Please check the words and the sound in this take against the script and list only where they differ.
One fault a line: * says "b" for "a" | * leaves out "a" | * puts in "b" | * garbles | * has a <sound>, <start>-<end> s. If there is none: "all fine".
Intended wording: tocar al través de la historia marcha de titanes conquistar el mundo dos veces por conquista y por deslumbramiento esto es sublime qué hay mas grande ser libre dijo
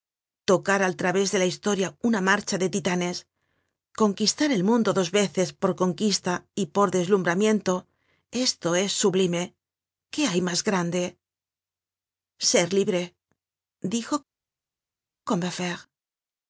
* puts in "una"